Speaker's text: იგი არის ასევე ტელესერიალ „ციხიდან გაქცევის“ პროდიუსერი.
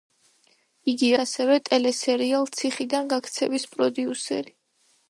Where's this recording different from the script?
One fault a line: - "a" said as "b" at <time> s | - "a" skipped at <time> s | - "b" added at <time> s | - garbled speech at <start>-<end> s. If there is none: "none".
- "არის" skipped at 1.1 s